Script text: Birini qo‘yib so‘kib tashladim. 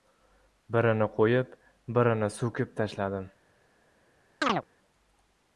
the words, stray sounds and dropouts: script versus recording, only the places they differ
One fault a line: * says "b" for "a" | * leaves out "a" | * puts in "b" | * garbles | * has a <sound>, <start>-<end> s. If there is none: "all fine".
* puts in "birini"
* has a chirp, 4.4-4.6 s